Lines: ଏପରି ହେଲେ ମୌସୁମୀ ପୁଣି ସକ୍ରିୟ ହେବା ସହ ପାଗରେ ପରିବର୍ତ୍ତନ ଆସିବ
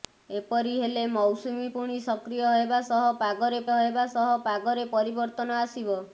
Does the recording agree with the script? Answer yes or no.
no